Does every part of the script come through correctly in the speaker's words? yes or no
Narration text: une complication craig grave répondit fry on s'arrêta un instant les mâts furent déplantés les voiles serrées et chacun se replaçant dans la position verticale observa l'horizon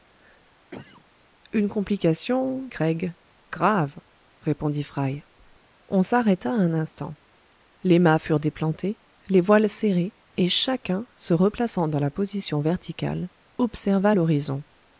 yes